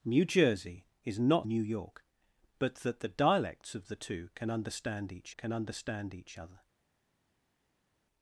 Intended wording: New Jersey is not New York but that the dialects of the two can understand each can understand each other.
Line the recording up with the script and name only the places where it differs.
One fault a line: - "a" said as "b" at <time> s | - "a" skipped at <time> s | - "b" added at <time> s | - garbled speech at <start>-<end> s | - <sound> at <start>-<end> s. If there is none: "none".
none